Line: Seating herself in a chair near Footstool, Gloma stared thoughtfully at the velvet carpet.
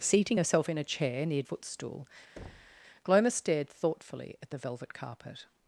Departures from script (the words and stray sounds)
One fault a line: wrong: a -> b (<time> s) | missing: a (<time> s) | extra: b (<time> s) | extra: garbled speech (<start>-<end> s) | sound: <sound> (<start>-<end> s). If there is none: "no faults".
sound: thud (2.4-2.8 s)